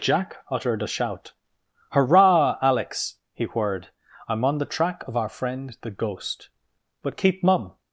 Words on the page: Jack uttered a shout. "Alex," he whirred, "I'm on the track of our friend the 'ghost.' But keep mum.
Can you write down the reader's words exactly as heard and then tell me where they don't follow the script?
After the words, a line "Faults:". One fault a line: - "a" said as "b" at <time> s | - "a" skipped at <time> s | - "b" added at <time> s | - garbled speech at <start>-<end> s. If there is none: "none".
Jack uttered a shout. "Hurrah, Alex," he whirred, "I'm on the track of our friend the 'ghost.' But keep mum.
Faults:
- "Hurrah" added at 1.9 s